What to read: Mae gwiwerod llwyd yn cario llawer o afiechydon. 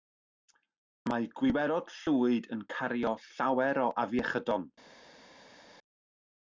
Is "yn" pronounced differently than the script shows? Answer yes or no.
no